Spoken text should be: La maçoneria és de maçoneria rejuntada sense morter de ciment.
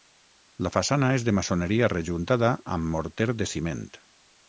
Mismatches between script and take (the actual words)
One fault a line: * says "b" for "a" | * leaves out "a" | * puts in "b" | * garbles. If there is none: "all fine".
* says "façana" for "maçoneria"
* says "amb" for "sense"